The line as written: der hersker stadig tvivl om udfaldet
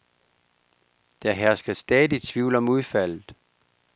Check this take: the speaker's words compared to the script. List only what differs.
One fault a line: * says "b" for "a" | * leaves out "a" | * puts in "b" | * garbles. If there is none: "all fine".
all fine